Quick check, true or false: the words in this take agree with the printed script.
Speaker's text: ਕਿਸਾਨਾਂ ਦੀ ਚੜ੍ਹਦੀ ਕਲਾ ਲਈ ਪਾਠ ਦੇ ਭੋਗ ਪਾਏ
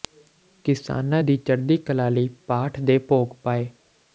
true